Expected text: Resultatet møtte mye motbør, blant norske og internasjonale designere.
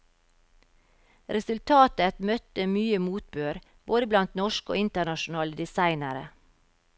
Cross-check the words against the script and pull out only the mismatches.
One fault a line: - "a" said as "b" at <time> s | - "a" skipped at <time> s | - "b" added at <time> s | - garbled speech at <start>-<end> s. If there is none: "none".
- "både" added at 3.9 s